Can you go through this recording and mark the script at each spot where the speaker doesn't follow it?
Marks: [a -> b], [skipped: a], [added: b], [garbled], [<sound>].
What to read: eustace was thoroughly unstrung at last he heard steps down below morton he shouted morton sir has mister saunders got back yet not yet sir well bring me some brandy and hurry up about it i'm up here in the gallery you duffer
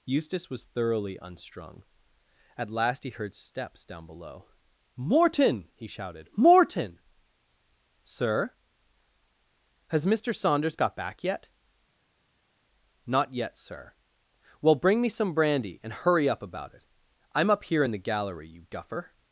eustace was thoroughly unstrung at last he heard steps down below morton he shouted morton sir has mister saunders got back yet not yet sir well bring me some brandy and hurry up about it i'm up here in the gallery you duffer